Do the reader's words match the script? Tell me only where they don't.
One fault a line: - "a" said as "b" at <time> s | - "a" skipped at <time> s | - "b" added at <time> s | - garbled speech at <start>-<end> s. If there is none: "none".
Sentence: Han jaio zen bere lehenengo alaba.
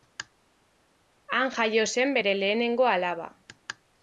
none